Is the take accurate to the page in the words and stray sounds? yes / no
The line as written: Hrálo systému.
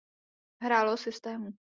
yes